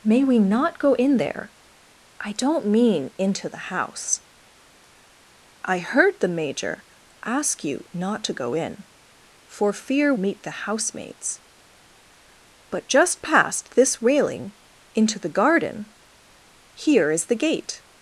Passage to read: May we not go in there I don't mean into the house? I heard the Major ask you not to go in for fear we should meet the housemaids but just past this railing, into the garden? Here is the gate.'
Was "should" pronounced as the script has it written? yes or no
no